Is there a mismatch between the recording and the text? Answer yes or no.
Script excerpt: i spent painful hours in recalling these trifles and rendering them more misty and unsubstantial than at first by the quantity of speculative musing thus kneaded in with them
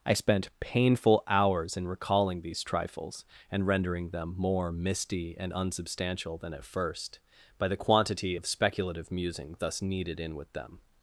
no